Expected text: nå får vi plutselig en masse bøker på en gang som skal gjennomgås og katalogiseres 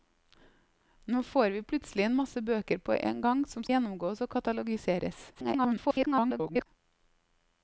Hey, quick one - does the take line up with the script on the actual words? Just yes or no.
no